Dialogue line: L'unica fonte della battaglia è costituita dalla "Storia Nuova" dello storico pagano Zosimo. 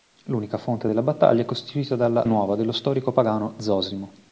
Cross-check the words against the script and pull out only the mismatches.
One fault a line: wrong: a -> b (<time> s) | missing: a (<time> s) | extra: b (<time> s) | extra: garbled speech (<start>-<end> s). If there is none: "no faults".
missing: Storia (2.3 s)